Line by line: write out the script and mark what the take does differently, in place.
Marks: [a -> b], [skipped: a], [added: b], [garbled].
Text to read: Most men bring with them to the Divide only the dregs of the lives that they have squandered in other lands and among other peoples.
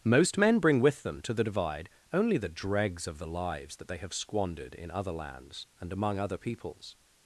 Most men bring with them to the Divide only the dregs of the lives that they have squandered in other lands and among other peoples.